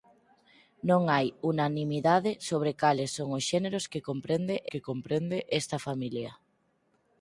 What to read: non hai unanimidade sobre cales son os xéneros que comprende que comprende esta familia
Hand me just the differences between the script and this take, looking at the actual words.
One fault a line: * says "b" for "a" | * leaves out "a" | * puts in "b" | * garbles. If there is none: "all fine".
all fine